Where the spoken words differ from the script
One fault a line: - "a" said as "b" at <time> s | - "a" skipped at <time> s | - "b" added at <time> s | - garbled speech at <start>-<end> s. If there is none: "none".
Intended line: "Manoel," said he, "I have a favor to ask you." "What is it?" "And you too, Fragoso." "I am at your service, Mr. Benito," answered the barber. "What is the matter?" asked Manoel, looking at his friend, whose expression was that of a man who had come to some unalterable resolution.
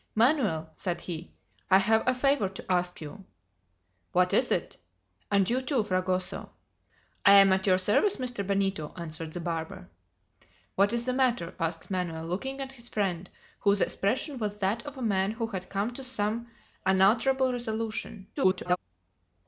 - garbled speech at 18.4-18.8 s